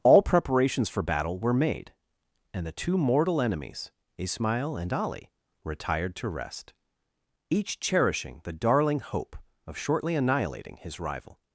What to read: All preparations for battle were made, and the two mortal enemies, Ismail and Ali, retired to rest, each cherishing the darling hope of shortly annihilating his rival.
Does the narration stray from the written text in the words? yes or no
no